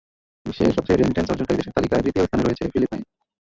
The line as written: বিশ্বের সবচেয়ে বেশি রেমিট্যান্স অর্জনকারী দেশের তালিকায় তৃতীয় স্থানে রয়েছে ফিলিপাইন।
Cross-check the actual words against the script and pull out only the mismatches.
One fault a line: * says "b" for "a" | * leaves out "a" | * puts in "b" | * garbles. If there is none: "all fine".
* leaves out "বেশি"